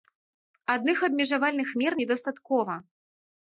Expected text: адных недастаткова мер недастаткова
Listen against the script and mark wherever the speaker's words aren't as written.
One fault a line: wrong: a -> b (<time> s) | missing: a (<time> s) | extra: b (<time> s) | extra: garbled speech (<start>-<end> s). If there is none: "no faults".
wrong: недастаткова -> абмежавальных (1.1 s)